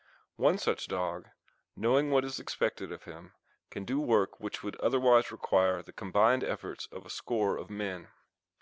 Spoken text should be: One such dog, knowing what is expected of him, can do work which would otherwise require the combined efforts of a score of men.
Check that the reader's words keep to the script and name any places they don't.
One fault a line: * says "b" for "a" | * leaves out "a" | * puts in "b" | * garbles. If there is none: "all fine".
all fine